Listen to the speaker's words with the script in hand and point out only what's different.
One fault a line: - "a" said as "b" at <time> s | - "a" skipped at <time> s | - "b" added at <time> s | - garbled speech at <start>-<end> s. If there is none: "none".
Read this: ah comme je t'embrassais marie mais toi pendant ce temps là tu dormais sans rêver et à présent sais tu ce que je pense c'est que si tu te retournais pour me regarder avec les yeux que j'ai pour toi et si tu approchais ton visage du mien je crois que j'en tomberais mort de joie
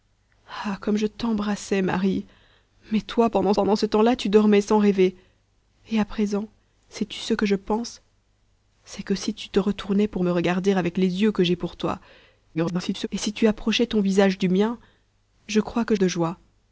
- "pendant" added at 3.5 s
- garbled speech at 12.5-13.1 s
- "j'en tomberais mort" skipped at 15.9 s